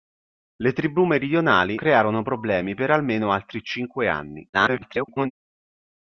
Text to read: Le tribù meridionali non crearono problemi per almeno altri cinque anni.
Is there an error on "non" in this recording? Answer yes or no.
yes